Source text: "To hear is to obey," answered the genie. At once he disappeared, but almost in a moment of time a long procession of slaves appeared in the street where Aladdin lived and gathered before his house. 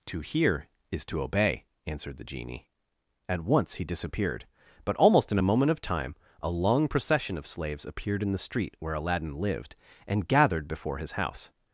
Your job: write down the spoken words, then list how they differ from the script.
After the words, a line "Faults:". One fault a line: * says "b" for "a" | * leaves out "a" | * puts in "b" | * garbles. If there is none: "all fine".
"To hear is to obey," answered the genie. At once he disappeared, but almost in a moment of time a long procession of slaves appeared in the street where Aladdin lived and gathered before his house.
Faults:
all fine